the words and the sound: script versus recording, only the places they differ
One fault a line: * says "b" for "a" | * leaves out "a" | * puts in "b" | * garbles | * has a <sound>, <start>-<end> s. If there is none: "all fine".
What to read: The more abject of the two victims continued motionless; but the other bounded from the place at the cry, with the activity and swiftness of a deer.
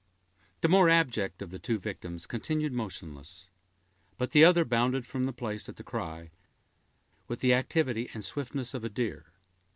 all fine